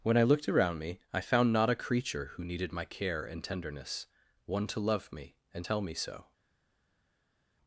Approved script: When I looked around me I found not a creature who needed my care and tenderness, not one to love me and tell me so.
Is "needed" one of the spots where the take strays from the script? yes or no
no